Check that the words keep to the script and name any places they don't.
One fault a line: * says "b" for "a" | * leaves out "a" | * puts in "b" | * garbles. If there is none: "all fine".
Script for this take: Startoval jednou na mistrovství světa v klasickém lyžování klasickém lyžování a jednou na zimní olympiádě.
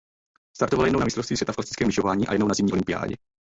* leaves out "klasickém lyžování"